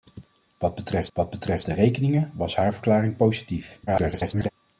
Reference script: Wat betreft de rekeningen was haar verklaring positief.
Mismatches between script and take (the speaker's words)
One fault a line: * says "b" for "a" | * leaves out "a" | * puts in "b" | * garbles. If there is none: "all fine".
* puts in "wat betreft"
* garbles